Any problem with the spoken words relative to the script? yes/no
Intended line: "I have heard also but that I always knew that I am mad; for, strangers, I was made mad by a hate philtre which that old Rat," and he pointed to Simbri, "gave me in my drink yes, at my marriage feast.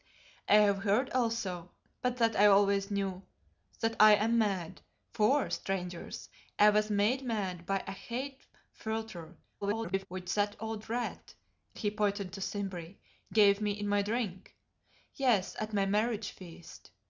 yes